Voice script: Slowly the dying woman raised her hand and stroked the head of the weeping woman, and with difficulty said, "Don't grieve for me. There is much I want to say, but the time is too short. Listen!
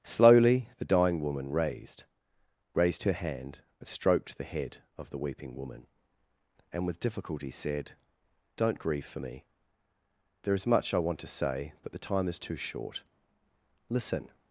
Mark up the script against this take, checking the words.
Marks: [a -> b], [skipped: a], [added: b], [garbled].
Slowly the dying woman raised [added: raised] her hand and stroked the head of the weeping woman, and with difficulty said, "Don't grieve for me. There is much I want to say, but the time is too short. Listen!